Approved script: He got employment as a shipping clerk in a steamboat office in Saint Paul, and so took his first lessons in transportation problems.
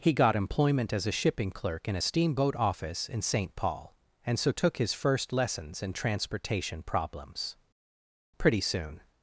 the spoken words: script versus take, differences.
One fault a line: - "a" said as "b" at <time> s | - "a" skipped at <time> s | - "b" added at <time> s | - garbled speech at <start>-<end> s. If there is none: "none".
- "Pretty soon" added at 8.4 s